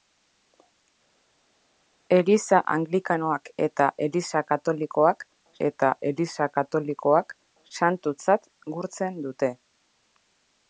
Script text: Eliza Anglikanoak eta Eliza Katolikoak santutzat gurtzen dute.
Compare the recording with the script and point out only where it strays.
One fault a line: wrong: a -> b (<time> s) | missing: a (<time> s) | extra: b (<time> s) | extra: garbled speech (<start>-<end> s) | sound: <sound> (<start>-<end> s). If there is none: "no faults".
extra: eta Eliza Katolikoak (5.7 s)